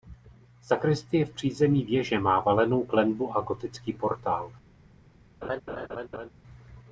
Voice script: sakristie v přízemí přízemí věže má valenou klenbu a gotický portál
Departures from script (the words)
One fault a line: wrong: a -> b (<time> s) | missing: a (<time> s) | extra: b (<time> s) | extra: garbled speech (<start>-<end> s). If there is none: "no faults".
missing: přízemí (1.9 s)